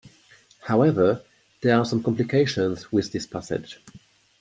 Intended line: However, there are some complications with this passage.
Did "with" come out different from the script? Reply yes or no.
no